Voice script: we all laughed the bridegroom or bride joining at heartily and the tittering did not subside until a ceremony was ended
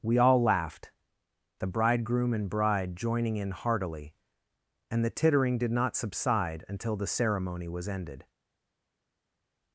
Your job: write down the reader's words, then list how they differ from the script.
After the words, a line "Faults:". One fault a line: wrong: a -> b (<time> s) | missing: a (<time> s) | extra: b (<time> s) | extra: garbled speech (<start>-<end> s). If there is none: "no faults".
we all laughed the bridegroom and bride joining in heartily and the tittering did not subside until the ceremony was ended
Faults:
wrong: or -> and (2.3 s)
wrong: at -> in (3.4 s)
wrong: a -> the (7.0 s)